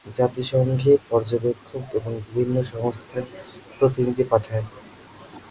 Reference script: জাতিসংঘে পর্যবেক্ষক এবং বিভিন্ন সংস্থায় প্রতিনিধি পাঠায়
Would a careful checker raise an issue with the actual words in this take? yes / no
no